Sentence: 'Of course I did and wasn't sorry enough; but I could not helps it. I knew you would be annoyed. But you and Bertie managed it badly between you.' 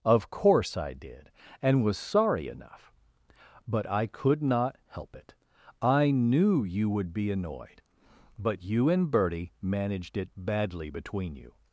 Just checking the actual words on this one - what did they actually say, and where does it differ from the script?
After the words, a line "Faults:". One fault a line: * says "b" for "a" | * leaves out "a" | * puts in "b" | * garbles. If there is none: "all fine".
'Of course I did and was sorry enough; but I could not help it. I knew you would be annoyed. But you and Bertie managed it badly between you.'
Faults:
* says "was" for "wasn't"
* says "help" for "helps"